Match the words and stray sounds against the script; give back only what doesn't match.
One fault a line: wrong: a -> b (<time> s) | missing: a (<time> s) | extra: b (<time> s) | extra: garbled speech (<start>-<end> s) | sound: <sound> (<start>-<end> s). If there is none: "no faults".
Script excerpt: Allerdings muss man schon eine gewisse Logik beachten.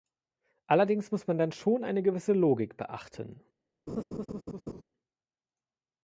extra: dann (1.4 s)
sound: laugh (3.9-4.8 s)